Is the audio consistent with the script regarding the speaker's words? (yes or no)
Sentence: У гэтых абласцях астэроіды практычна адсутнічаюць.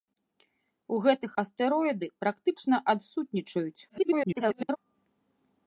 no